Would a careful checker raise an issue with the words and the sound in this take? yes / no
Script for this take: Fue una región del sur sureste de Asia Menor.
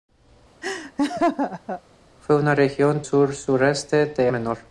yes